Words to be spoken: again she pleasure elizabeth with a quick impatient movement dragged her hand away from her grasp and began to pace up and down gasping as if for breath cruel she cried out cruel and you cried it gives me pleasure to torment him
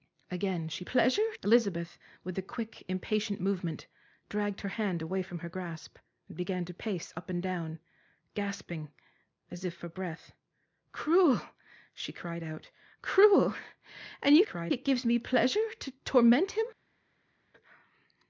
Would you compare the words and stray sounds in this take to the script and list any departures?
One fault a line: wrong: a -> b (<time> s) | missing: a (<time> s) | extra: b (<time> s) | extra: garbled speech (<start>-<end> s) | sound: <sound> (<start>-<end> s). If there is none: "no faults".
no faults